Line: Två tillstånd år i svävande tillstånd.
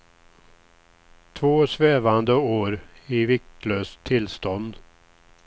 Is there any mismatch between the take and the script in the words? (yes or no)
yes